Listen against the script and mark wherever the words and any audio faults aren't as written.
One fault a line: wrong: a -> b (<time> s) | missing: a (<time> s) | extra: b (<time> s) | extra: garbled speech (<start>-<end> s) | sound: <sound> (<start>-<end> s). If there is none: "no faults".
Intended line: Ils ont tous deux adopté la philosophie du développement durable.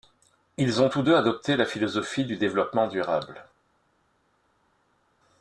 no faults